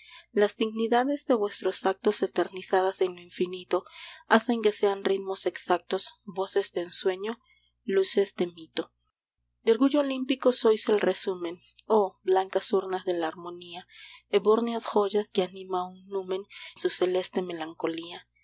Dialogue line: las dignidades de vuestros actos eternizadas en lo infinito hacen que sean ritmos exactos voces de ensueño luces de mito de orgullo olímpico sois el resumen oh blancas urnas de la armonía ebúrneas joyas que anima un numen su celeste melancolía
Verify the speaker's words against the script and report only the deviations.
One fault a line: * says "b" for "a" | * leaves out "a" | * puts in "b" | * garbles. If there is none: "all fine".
all fine